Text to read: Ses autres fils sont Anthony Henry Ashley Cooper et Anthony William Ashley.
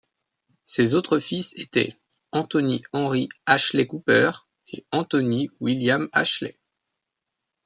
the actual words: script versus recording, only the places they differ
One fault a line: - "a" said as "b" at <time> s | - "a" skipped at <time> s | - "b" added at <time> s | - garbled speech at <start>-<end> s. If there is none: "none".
- "sont" said as "étaient" at 1.6 s